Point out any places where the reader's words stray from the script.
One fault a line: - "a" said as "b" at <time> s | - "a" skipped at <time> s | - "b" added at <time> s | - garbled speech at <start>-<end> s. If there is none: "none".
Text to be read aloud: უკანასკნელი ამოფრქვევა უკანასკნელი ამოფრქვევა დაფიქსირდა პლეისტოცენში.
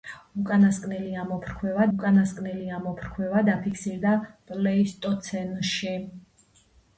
none